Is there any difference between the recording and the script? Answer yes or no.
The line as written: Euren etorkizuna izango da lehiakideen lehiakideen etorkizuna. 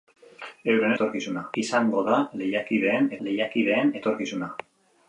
no